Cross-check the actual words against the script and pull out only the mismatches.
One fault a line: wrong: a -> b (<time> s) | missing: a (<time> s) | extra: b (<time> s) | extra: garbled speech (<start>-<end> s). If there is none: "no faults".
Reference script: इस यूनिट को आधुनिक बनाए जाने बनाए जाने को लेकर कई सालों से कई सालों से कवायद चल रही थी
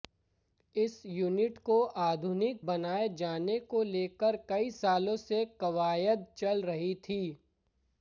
missing: बनाए जाने (3.6 s)
missing: कई सालों से (5.4 s)